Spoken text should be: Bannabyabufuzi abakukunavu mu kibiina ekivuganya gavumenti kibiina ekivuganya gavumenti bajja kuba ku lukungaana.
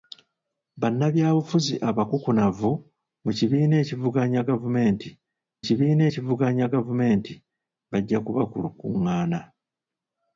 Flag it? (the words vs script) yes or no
no